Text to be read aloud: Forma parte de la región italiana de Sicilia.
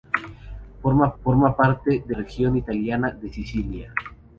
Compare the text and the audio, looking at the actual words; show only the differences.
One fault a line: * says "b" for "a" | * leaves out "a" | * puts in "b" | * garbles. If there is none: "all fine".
* puts in "forma"
* leaves out "la"